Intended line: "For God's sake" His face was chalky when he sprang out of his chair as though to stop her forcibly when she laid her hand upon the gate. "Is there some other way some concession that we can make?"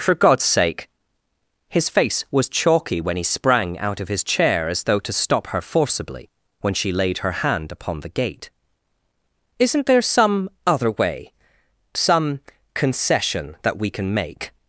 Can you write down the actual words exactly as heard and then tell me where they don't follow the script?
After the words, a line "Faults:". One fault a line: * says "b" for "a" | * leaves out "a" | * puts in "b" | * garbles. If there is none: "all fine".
"For God's sake" His face was chalky when he sprang out of his chair as though to stop her forcibly when she laid her hand upon the gate. "Isn't there some other way some concession that we can make?"
Faults:
* says "Isn't" for "Is"